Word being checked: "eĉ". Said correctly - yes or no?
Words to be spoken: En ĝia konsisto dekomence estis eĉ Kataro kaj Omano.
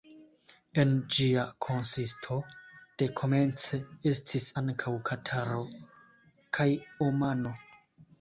no